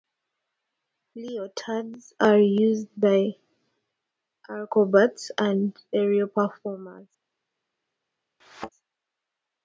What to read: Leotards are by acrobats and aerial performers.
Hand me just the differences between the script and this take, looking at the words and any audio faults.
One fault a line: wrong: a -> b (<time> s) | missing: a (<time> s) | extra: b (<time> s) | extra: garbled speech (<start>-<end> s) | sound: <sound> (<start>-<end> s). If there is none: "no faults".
extra: used (2.4 s)
sound: thud (8.4-8.7 s)